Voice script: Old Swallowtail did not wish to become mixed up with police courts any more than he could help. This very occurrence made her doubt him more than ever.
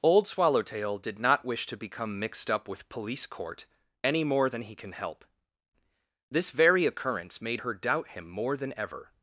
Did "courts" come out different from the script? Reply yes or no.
yes